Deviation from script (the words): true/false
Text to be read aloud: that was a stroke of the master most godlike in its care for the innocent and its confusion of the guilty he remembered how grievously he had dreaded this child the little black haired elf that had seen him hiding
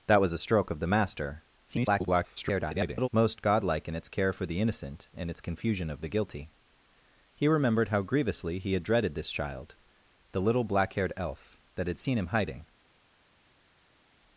true